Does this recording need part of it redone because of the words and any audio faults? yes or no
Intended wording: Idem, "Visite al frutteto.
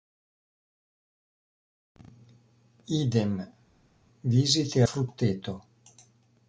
yes